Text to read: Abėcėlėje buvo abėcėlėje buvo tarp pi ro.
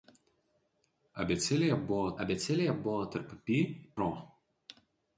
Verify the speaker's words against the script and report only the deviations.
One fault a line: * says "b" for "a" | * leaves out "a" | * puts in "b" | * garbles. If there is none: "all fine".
all fine